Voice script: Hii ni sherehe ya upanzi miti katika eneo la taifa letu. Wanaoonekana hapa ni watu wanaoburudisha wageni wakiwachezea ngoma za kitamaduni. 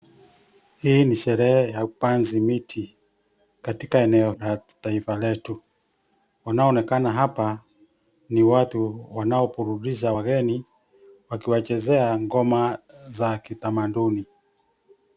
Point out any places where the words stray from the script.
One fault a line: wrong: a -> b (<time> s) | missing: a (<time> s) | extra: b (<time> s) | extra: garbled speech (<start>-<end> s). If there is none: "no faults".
no faults